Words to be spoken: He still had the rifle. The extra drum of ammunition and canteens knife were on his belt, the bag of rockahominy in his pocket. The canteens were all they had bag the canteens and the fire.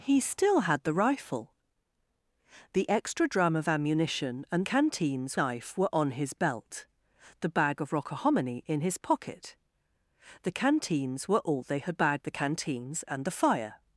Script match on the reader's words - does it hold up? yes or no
yes